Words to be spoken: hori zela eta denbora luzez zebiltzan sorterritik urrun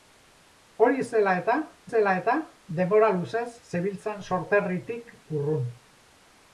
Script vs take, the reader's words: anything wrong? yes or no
yes